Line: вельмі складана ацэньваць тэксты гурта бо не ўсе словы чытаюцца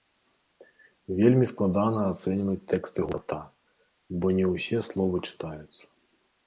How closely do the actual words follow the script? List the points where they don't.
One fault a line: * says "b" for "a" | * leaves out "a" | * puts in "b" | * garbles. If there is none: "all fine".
all fine